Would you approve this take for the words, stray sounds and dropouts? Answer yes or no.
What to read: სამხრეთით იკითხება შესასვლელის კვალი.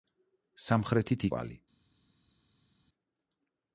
no